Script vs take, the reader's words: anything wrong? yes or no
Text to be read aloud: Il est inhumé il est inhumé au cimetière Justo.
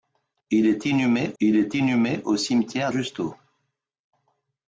no